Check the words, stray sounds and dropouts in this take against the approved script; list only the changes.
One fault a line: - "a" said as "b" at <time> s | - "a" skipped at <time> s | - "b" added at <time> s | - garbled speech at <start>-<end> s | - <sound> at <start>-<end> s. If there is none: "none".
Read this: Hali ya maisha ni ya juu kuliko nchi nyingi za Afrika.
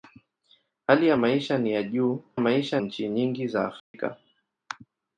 - "kuliko" said as "maisha" at 2.4 s
- dropout at 3.8-3.9 s